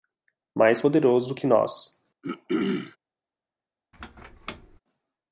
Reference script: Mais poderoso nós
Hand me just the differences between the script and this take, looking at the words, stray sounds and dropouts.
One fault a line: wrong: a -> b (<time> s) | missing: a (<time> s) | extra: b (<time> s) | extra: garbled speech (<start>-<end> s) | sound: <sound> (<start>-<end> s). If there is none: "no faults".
extra: que (1.3 s)
sound: throat clearing (2.2-3.0 s)
sound: squeak (3.9-4.8 s)